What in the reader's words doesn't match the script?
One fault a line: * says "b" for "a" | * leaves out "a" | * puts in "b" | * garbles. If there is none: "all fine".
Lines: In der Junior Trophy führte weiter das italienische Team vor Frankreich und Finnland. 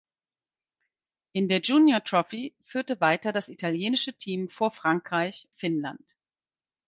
* leaves out "und"